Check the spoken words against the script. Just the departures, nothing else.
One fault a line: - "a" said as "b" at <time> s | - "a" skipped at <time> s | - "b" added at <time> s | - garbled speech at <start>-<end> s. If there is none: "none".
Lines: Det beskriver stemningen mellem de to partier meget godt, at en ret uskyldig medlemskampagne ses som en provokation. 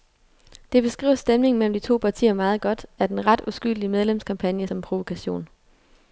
- "ses" skipped at 4.7 s